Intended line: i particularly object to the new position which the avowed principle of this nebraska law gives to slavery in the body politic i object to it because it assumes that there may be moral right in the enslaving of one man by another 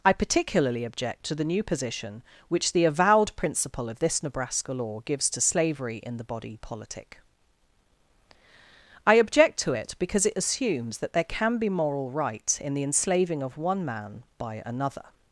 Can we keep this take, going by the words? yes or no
no